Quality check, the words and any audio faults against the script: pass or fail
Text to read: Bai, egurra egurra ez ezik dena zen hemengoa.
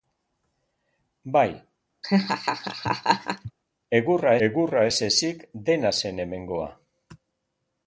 fail